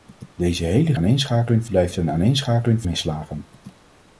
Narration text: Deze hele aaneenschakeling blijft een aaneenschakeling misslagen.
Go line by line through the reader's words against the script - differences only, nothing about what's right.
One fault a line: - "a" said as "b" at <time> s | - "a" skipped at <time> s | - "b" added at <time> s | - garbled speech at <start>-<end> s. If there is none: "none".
none